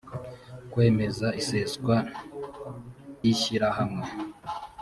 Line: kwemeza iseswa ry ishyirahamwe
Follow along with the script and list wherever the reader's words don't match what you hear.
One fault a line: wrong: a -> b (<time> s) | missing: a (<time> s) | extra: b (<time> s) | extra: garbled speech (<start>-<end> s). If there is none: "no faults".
missing: ry (1.9 s)